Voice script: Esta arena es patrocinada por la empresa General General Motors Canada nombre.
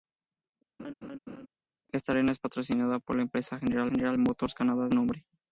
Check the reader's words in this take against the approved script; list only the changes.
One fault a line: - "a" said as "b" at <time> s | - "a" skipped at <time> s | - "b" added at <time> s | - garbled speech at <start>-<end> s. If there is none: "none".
none